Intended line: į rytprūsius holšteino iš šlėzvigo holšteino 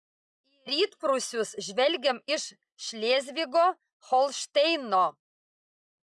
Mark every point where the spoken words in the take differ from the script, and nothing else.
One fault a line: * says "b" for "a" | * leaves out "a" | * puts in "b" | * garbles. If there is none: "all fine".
* says "žvelgiam" for "holšteino"